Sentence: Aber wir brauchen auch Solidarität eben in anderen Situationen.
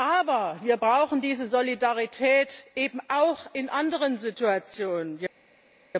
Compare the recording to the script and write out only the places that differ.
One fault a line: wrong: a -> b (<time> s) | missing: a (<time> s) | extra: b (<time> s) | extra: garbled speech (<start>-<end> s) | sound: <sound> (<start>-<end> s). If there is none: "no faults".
wrong: auch -> diese (1.2 s)
extra: auch (3.1 s)